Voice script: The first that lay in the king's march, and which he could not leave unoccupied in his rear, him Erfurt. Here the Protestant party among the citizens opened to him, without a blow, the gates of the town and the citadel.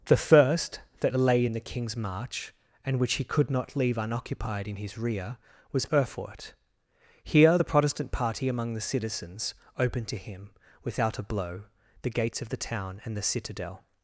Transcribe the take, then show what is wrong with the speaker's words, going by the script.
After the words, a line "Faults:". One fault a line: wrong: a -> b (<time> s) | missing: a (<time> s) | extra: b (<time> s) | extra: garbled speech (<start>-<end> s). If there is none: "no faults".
The first that lay in the king's march, and which he could not leave unoccupied in his rear, was Erfurt. Here the Protestant party among the citizens opened to him, without a blow, the gates of the town and the citadel.
Faults:
wrong: him -> was (5.7 s)